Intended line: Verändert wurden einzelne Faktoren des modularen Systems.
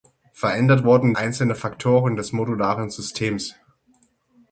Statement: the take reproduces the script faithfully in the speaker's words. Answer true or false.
true